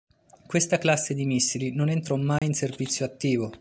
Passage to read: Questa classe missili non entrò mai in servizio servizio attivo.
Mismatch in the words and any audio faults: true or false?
true